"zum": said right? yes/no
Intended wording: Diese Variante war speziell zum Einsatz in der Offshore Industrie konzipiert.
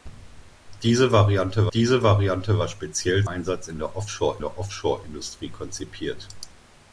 no